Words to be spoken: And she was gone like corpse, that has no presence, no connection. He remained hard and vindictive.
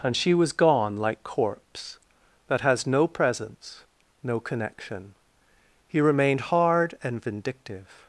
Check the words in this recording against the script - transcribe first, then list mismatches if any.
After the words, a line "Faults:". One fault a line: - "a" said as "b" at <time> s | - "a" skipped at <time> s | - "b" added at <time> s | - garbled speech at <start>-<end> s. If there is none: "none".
And she was gone like corpse, that has no presence, no connection. He remained hard and vindictive.
Faults:
none